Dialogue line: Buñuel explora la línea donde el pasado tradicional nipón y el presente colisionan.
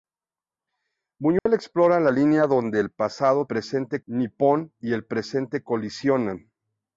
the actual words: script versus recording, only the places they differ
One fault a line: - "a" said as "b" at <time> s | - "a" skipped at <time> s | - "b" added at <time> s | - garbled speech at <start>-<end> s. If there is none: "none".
- "tradicional" said as "presente" at 3.4 s